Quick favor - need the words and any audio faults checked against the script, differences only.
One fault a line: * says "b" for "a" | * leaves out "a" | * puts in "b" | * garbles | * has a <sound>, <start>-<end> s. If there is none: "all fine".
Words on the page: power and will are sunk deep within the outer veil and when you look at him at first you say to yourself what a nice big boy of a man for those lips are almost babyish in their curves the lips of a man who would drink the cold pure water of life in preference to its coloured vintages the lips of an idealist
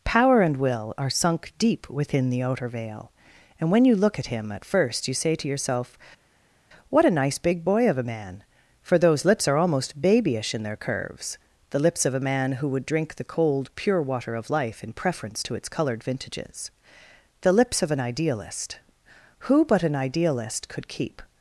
* puts in "who but an idealist could keep"